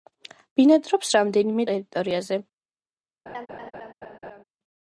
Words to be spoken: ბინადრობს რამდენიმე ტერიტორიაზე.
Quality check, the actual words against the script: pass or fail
pass